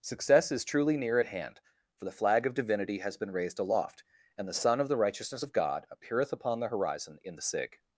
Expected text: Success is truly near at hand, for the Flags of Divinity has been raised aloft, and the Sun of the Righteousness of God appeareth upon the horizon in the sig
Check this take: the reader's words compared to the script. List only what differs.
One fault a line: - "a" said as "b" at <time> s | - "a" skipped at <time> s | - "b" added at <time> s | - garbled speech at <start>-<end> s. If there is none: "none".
- "Flags" said as "Flag" at 2.1 s